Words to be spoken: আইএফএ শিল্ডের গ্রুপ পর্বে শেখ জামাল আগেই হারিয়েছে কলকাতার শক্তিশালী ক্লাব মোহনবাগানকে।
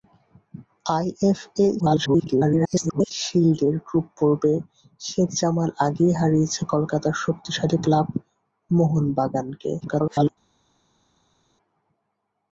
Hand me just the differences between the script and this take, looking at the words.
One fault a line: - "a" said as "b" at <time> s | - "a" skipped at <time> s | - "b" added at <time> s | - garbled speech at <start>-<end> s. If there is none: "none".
- garbled speech at 1.8-3.1 s
- garbled speech at 9.8-10.3 s